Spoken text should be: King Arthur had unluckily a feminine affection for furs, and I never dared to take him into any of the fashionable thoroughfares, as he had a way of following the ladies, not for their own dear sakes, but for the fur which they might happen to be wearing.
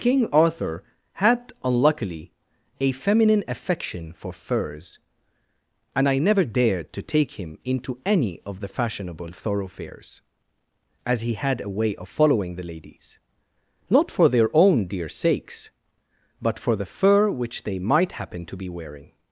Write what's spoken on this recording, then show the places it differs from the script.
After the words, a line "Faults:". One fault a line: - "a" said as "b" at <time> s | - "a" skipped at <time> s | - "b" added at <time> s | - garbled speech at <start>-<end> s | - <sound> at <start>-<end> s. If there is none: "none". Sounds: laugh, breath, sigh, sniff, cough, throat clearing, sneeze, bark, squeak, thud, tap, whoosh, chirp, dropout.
King Arthur had unluckily a feminine affection for furs, and I never dared to take him into any of the fashionable thoroughfares, as he had a way of following the ladies, not for their own dear sakes, but for the fur which they might happen to be wearing.
Faults:
none